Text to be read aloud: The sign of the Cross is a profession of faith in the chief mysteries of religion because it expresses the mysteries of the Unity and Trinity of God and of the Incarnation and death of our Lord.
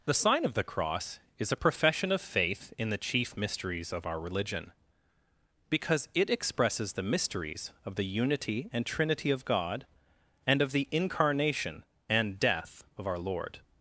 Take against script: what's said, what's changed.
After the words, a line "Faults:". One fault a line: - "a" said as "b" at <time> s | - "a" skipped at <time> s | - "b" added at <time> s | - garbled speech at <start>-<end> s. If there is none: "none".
The sign of the Cross is a profession of faith in the chief mysteries of our religion because it expresses the mysteries of the Unity and Trinity of God and of the Incarnation and death of our Lord.
Faults:
- "our" added at 4.0 s